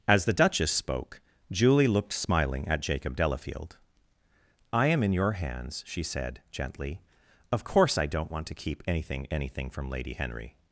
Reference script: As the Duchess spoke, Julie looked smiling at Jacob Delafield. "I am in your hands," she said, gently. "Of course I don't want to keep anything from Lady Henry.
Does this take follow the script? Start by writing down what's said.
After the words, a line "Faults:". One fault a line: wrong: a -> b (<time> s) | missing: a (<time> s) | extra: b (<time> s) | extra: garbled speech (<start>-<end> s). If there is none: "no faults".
As the Duchess spoke, Julie looked smiling at Jacob Delafield. "I am in your hands," she said, gently. "Of course I don't want to keep anything anything from Lady Henry.
Faults:
extra: anything (9.3 s)